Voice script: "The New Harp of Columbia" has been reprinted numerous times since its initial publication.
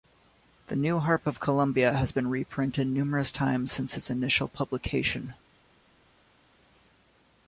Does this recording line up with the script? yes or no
yes